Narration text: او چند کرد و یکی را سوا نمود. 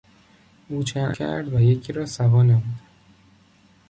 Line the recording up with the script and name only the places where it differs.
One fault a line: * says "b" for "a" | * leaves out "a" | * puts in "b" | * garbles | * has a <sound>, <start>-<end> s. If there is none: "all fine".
all fine